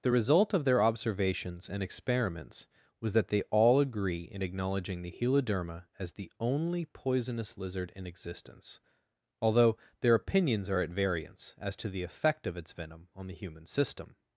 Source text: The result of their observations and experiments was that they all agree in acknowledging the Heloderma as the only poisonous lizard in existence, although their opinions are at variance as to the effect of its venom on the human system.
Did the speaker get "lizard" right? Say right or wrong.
right